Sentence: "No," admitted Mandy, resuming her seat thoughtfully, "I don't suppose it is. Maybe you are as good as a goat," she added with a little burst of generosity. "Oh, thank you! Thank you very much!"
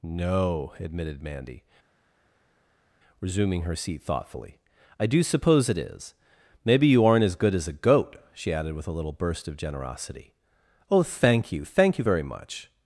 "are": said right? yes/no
no